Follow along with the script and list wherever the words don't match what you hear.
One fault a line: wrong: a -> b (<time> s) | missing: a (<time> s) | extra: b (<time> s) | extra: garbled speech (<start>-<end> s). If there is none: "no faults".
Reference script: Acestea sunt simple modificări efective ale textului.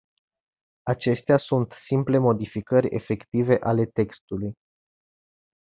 no faults